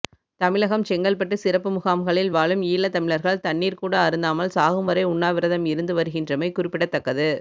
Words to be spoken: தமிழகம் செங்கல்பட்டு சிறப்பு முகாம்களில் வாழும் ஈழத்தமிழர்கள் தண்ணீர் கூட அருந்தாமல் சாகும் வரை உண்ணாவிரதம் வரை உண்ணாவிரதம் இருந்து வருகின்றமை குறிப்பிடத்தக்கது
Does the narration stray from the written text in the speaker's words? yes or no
yes